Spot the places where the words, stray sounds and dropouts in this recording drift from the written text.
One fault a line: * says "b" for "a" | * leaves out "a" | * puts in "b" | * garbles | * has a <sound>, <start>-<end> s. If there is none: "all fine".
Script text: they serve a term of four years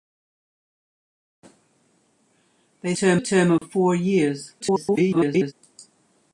* says "term" for "serve"
* has a dropout, 3.6-3.6 s
* garbles